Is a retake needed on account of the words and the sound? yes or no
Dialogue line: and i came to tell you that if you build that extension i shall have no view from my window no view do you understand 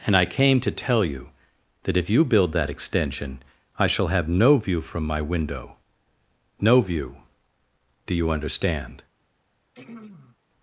yes